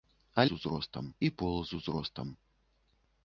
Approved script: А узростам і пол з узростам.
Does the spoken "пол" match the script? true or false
true